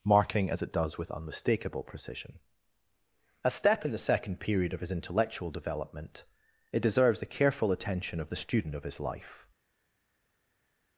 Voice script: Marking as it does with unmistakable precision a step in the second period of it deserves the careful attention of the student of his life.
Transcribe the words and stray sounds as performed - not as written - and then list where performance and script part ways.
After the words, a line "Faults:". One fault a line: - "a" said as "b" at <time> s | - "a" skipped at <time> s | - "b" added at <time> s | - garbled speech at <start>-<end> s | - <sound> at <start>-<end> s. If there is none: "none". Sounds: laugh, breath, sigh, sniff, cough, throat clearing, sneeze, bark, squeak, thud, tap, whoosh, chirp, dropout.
Marking as it does with unmistakable precision a step in the second period of his intellectual development, it deserves the careful attention of the student of his life.
Faults:
- "his intellectual development" added at 4.8 s